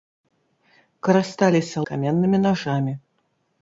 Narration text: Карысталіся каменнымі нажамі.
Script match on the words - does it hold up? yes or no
yes